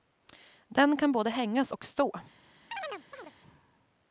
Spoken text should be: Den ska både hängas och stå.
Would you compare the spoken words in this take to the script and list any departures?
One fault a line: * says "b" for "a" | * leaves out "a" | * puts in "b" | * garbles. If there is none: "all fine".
* says "kan" for "ska"